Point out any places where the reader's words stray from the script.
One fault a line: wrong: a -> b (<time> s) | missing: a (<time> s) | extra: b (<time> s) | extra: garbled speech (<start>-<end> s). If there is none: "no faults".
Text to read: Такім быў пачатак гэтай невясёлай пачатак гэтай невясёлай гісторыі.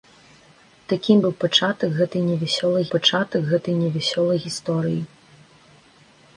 no faults